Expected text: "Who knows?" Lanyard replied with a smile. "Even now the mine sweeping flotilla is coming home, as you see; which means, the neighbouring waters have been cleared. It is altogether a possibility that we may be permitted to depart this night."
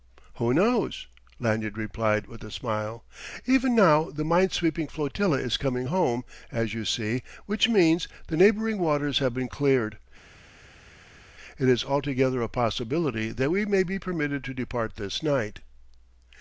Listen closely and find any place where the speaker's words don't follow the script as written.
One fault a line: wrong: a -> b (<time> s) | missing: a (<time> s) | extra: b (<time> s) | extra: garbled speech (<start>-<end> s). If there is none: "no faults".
no faults